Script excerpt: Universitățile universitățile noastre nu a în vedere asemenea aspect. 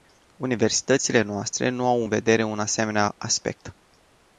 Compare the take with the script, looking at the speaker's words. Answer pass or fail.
fail